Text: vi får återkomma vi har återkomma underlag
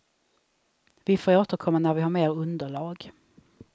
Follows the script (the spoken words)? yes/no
no